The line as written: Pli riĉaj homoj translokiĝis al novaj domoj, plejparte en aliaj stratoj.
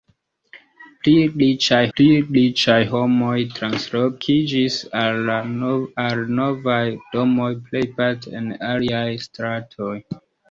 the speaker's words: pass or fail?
fail